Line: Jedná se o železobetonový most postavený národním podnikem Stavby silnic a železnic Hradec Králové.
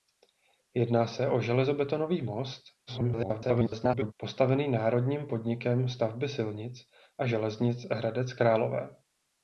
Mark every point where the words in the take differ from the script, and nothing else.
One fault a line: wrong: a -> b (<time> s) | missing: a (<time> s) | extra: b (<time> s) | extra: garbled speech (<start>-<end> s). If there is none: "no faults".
extra: garbled speech (2.9-4.1 s)